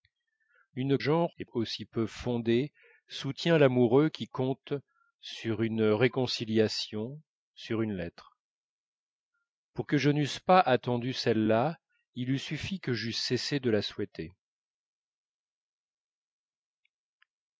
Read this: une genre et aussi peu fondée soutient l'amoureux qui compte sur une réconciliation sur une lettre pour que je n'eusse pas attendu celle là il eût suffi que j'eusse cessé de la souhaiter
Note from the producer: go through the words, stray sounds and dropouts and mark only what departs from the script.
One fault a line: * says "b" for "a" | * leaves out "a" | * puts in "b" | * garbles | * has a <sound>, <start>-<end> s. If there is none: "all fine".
all fine